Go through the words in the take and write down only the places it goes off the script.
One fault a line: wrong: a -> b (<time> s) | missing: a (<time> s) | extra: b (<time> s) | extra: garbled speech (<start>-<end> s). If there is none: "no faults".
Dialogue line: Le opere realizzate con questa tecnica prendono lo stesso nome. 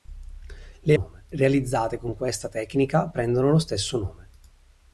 wrong: opere -> nome (0.9 s)